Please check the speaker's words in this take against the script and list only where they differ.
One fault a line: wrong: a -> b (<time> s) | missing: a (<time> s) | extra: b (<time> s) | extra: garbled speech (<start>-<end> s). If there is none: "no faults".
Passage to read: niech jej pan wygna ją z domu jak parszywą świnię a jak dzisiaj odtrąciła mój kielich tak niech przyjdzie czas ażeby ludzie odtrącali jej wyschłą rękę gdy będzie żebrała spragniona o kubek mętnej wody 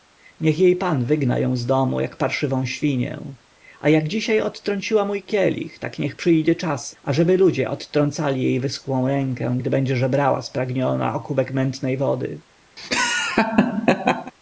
no faults